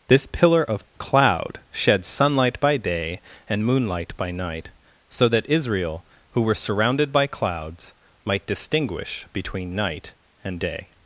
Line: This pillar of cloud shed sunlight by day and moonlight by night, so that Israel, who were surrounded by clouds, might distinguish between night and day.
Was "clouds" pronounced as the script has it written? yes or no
yes